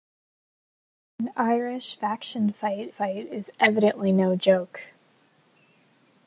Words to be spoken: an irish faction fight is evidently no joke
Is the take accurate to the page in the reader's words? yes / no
no